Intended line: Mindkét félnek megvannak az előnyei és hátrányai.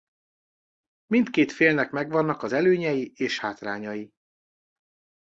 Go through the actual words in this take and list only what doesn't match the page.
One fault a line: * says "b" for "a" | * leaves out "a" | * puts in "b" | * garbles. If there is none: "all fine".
all fine